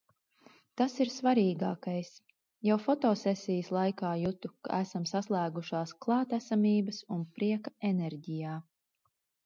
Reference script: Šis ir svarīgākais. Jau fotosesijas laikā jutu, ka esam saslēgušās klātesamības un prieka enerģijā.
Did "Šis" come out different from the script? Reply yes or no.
yes